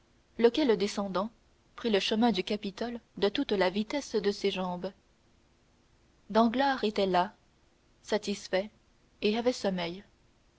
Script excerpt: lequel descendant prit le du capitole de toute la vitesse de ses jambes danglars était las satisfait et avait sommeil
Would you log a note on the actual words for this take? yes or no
yes